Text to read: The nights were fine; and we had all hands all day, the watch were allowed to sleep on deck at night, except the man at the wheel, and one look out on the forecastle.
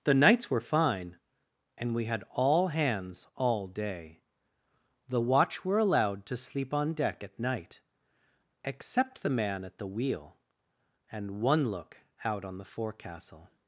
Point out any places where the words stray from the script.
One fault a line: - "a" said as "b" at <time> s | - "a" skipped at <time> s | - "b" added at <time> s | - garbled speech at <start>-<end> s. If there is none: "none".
none